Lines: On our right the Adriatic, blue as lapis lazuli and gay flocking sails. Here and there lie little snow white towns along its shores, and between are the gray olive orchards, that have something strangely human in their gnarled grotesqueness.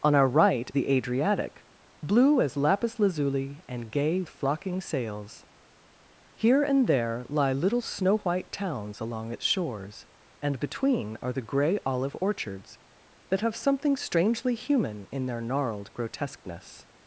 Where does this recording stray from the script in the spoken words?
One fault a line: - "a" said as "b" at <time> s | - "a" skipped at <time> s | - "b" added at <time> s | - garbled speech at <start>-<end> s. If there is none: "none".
none